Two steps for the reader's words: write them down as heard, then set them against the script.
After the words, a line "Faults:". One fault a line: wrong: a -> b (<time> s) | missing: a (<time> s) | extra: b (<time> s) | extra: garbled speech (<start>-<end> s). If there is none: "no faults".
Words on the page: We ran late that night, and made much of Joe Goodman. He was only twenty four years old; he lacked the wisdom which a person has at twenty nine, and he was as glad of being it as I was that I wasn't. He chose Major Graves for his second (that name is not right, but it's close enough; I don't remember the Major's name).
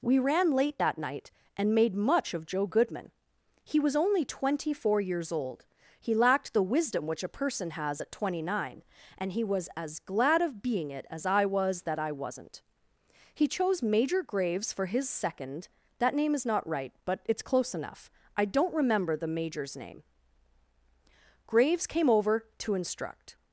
We ran late that night, and made much of Joe Goodman. He was only twenty four years old; he lacked the wisdom which a person has at twenty nine, and he was as glad of being it as I was that I wasn't. He chose Major Graves for his second (that name is not right, but it's close enough; I don't remember the Major's name). Graves came over to instruct
Faults:
extra: Graves came over to instruct (21.4 s)